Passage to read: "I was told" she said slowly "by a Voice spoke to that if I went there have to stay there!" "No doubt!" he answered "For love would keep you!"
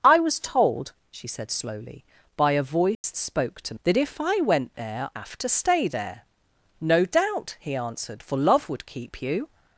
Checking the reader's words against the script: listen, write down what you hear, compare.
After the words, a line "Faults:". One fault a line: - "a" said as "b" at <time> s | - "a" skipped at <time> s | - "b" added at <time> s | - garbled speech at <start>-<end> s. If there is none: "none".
"I was told" she said slowly "by a Voice spoke to that if I went there have to stay there!" "No doubt!" he answered "For love would keep you!"
Faults:
none